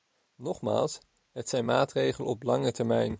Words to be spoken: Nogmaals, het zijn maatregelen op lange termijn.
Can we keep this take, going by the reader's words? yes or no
yes